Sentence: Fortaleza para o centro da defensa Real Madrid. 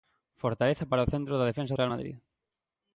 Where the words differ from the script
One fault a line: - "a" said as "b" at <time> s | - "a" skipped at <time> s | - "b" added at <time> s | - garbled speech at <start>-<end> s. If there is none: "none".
none